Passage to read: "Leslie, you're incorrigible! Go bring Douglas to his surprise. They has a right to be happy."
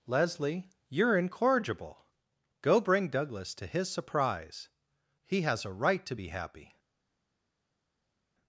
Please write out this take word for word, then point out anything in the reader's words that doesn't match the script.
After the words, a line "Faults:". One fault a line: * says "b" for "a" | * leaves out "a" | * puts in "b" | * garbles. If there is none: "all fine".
"Leslie, you're incorrigible! Go bring Douglas to his surprise. He has a right to be happy."
Faults:
* says "He" for "They"